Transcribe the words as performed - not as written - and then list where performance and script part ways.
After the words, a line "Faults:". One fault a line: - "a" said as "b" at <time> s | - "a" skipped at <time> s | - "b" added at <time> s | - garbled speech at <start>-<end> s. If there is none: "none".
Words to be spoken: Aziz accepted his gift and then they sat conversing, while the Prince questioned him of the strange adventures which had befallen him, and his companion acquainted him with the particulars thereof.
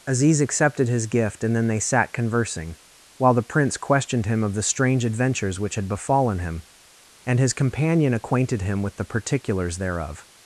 Aziz accepted his gift and then they sat conversing, while the Prince questioned him of the strange adventures which had befallen him, and his companion acquainted him with the particulars thereof.
Faults:
none